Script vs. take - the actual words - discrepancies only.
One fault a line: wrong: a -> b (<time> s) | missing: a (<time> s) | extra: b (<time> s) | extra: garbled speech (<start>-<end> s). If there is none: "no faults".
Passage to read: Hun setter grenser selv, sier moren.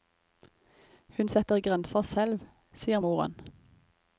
no faults